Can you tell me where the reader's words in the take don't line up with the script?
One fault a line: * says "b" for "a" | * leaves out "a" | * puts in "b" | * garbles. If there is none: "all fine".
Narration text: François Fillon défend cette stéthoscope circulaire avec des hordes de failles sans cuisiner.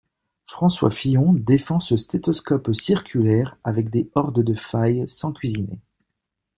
* says "ce" for "cette"